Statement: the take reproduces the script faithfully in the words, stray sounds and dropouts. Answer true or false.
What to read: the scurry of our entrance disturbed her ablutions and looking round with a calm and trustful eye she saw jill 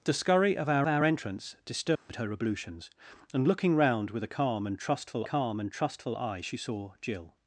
false